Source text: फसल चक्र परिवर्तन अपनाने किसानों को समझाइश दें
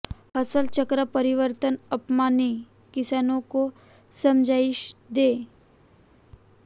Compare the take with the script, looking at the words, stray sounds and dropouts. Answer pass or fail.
pass